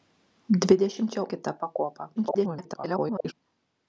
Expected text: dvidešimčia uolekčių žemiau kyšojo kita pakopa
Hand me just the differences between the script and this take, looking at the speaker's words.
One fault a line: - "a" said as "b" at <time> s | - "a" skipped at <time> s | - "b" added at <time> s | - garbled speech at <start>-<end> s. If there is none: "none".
- "uolekčių žemiau kyšojo" skipped at 1.2 s
- garbled speech at 2.2-3.3 s